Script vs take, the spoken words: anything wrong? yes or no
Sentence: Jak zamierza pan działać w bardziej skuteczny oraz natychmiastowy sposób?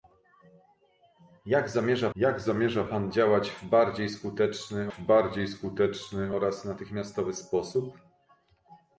yes